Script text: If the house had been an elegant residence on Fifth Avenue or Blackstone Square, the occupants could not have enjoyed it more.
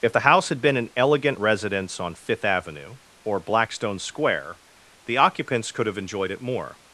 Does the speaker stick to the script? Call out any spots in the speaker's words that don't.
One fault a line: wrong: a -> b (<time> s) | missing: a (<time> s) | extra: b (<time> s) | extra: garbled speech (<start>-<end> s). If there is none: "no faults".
missing: not (5.9 s)